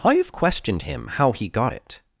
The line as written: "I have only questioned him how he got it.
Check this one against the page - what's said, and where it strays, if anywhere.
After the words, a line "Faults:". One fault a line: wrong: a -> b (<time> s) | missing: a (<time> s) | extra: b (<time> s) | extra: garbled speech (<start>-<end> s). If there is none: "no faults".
"I have questioned him how he got it.
Faults:
missing: only (0.3 s)